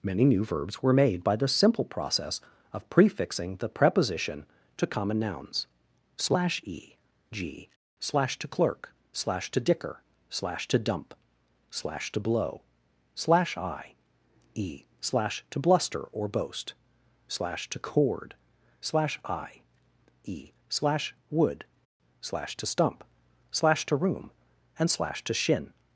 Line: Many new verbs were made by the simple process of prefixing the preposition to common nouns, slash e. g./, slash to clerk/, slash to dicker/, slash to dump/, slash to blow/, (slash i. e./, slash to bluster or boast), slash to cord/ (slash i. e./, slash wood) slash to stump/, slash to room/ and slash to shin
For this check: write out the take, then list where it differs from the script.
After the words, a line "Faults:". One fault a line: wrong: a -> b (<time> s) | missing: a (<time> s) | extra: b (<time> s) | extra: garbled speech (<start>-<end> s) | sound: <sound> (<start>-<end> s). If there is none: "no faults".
Many new verbs were made by the simple process of prefixing the preposition to common nouns, slash e. g./, slash to clerk/, slash to dicker/, slash to dump/, slash to blow/, (slash i. e./, slash to bluster or boast), slash to cord/ (slash i. e./, slash wood) slash to stump/, slash to room/ and slash to shin
Faults:
no faults